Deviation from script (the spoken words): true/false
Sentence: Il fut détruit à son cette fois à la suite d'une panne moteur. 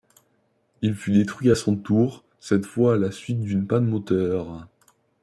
true